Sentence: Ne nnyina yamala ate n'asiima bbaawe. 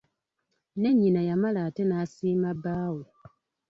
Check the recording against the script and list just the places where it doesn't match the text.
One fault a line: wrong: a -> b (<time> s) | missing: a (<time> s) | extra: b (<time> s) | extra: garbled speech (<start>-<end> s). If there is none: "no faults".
no faults